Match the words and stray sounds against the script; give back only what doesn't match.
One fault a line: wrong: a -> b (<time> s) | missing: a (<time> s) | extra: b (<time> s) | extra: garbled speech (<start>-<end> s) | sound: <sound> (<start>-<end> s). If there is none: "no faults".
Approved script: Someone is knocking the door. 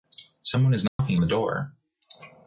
sound: dropout (0.9-1.0 s)